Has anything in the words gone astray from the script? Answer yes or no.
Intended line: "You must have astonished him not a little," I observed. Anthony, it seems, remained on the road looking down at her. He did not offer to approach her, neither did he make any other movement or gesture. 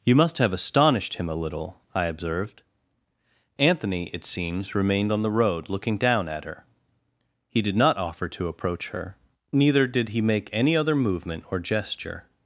yes